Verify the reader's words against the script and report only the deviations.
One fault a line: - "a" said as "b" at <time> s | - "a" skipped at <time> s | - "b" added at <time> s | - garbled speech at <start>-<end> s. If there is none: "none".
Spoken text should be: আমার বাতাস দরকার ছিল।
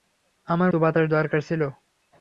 none